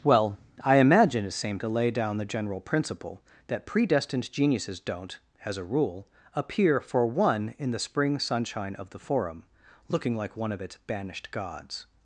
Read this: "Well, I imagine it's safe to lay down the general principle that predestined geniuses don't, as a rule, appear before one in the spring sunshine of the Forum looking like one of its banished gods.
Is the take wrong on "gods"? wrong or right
right